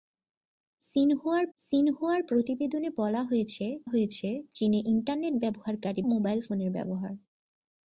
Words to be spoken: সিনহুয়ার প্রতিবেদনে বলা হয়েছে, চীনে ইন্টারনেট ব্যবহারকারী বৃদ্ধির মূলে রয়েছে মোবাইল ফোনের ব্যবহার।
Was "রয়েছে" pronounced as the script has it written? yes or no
no